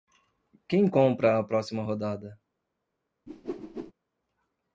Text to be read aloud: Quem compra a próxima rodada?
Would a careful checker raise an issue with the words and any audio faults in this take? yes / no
yes